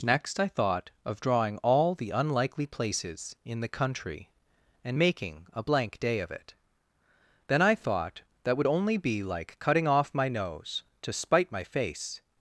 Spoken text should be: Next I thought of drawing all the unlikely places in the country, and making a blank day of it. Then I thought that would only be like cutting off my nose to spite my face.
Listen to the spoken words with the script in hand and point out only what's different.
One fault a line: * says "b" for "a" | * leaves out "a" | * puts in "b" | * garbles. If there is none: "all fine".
all fine